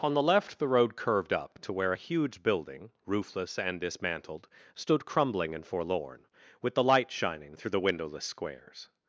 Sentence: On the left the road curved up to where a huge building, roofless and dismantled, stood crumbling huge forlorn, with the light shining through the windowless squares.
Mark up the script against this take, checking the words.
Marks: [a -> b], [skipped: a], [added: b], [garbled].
On the left the road curved up to where a huge building, roofless and dismantled, stood crumbling [huge -> and] forlorn, with the light shining through the windowless squares.